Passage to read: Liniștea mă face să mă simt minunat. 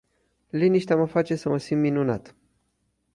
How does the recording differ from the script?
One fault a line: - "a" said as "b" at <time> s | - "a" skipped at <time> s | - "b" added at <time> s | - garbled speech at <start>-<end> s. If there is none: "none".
none